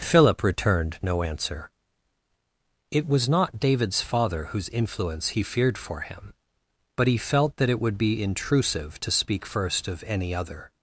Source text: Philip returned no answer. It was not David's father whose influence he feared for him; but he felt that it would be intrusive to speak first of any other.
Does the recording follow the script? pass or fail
pass